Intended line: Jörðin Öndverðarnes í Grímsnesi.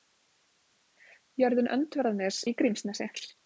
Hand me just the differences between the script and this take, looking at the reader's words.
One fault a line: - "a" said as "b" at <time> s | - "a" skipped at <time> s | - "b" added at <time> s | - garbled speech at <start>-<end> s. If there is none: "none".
none